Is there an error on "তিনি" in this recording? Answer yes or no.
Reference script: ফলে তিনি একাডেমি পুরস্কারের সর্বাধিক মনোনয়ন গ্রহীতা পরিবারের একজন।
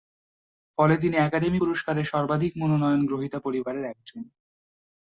no